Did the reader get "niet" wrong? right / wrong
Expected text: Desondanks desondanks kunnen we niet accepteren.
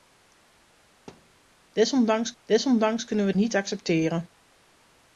right